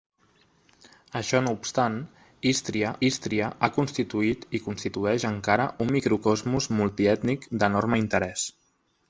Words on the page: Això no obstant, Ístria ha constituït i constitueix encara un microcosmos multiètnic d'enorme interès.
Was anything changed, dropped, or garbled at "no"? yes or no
no